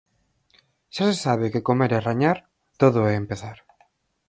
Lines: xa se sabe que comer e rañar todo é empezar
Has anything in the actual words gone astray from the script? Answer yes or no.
no